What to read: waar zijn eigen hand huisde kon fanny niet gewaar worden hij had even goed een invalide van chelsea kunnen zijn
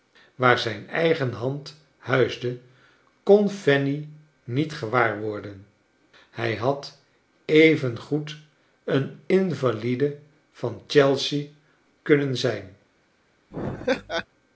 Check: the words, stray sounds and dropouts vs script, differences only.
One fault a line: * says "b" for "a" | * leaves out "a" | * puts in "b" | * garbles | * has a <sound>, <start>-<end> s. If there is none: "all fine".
* has a laugh, 13.5-14.3 s